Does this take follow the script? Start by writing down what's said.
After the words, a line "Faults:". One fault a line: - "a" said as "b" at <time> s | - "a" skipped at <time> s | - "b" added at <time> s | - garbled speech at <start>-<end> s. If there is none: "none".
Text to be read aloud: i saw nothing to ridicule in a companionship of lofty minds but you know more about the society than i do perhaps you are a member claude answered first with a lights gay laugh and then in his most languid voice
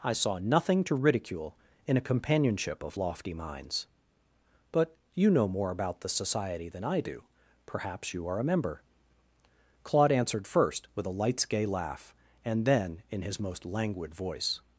i saw nothing to ridicule in a companionship of lofty minds but you know more about the society than i do perhaps you are a member claude answered first with a lights gay laugh and then in his most languid voice
Faults:
none